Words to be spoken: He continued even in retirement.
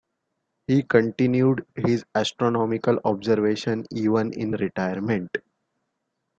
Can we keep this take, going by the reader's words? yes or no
no